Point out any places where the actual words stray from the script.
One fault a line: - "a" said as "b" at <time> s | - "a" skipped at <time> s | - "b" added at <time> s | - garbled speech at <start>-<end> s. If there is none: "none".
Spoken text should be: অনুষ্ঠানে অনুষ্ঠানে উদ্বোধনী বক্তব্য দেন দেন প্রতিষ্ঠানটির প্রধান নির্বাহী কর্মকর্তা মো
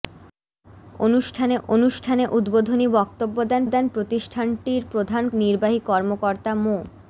none